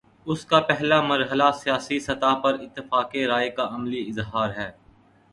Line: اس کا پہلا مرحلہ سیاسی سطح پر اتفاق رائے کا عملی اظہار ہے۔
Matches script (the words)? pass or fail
pass